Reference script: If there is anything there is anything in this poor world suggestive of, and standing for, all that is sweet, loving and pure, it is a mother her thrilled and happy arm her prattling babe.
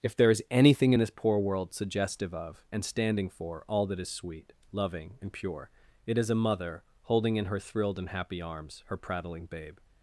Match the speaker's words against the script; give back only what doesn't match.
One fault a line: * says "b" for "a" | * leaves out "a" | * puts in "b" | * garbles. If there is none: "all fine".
* leaves out "there is anything"
* puts in "holding in"
* says "arms" for "arm"